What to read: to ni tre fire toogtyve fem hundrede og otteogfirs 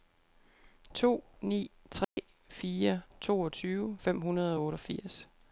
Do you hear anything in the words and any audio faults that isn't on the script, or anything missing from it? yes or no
yes